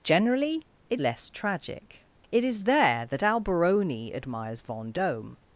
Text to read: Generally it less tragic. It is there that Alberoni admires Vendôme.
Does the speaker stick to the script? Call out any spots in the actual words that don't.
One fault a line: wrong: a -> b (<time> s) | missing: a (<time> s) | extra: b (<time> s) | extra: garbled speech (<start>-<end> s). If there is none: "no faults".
no faults